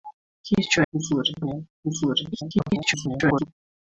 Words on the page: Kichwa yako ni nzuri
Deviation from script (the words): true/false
true